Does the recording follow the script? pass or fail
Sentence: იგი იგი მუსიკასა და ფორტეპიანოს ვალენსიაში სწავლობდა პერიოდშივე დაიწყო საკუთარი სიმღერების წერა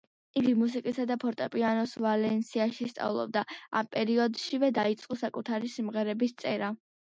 fail